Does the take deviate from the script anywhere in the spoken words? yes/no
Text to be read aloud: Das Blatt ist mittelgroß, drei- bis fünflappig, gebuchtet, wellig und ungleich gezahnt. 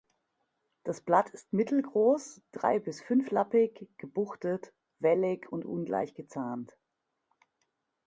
no